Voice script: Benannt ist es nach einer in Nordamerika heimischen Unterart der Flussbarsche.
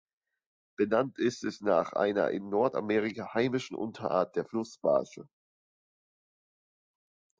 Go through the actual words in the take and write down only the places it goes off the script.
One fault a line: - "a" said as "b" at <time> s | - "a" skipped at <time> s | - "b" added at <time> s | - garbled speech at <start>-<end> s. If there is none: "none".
none